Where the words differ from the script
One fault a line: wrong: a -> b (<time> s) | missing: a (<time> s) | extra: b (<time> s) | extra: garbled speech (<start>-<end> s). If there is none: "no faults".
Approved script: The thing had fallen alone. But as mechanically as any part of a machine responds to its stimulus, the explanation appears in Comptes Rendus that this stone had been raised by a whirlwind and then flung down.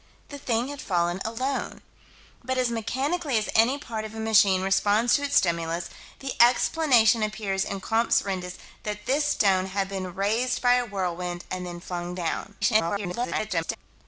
extra: garbled speech (12.6-13.8 s)